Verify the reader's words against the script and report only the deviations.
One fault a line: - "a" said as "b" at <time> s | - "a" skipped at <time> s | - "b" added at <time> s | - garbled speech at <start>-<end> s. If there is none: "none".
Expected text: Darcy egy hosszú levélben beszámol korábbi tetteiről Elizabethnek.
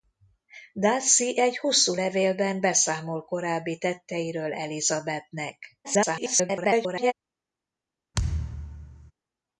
- garbled speech at 5.8-7.1 s